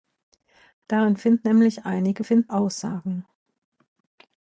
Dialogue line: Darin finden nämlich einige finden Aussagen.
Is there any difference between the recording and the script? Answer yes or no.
no